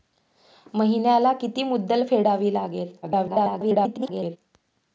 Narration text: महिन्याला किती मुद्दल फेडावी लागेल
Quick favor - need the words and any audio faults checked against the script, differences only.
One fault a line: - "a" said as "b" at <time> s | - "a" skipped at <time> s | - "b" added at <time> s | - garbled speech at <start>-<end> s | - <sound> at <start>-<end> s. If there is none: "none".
- garbled speech at 3.0-4.4 s